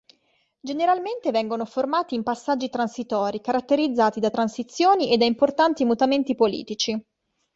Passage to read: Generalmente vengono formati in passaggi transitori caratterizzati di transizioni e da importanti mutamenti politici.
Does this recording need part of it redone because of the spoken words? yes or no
yes